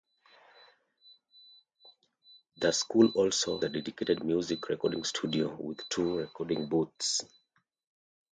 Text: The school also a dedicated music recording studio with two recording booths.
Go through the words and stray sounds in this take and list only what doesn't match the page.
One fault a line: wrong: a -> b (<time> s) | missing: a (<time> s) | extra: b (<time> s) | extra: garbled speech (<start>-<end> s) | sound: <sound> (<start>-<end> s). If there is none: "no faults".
no faults